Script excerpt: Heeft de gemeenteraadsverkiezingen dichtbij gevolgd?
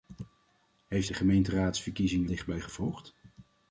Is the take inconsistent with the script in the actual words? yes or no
no